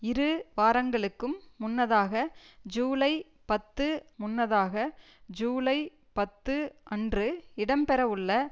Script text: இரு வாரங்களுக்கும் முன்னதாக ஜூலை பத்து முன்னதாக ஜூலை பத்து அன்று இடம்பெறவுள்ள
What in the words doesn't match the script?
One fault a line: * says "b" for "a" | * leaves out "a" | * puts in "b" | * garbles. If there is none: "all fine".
all fine